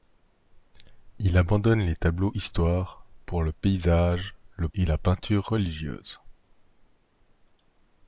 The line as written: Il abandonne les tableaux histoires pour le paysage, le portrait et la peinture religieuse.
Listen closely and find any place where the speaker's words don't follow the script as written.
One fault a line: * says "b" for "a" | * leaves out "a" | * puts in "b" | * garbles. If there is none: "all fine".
* leaves out "portrait"